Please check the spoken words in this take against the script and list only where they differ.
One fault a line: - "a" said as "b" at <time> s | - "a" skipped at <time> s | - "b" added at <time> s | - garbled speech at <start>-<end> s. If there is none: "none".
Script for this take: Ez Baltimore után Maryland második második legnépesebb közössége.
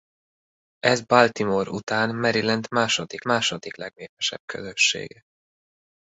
none